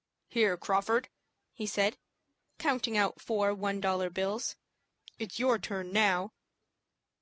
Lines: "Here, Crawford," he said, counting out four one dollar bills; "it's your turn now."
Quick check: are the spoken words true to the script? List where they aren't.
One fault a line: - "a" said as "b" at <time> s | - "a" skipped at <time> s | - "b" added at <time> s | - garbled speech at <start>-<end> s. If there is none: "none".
none